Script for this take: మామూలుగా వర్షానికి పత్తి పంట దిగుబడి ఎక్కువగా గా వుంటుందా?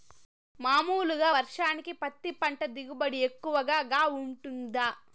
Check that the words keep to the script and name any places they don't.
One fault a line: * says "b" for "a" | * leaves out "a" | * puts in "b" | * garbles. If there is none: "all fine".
all fine